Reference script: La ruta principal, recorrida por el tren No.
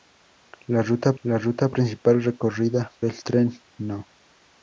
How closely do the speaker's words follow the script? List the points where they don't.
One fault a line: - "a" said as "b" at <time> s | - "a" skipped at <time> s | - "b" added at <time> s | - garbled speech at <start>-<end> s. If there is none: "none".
- "la ruta" added at 1.2 s
- "por" skipped at 2.9 s